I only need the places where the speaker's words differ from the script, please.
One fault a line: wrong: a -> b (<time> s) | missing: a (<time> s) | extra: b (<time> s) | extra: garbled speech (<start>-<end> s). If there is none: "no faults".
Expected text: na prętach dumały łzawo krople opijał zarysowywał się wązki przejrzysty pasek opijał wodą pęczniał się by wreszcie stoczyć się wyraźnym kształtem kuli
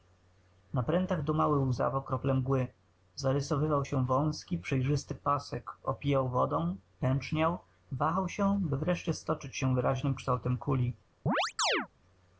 wrong: opijał -> mgły (2.3 s)
extra: wahał (7.9 s)